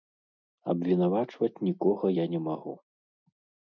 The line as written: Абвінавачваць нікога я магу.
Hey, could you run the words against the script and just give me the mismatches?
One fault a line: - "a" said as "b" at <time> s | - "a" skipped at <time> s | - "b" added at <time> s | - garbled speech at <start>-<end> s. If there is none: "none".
- "не" added at 2.4 s